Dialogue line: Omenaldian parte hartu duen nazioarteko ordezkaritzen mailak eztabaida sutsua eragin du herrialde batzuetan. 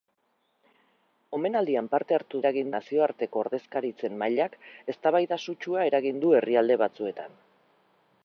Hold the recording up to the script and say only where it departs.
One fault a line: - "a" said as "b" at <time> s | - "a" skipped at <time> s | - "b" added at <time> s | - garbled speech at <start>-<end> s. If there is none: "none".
- "duen" said as "eragin" at 2.4 s